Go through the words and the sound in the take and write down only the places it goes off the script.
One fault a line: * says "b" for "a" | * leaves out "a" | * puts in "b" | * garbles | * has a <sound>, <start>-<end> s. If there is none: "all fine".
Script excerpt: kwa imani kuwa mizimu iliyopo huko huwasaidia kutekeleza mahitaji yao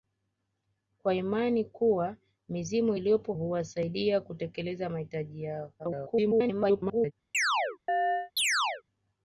* leaves out "huko"
* garbles
* has a chirp, 7.3-8.8 s